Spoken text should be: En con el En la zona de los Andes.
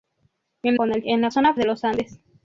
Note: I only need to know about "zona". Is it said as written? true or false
true